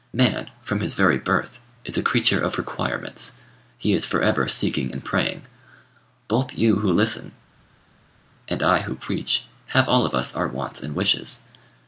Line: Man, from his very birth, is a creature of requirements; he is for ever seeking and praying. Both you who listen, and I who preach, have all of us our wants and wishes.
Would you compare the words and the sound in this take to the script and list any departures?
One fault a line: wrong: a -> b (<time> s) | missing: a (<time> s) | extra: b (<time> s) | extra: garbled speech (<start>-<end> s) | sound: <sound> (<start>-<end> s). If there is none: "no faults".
no faults